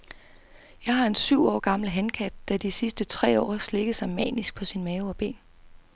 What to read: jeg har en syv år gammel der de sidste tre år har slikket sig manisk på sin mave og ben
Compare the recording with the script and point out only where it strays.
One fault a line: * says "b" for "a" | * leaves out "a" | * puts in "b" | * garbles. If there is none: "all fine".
* puts in "hankat"